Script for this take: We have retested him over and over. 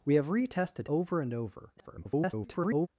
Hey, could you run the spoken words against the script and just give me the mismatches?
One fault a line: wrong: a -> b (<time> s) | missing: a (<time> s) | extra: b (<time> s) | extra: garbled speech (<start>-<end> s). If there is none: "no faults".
missing: him (0.9 s)
extra: garbled speech (1.8-2.9 s)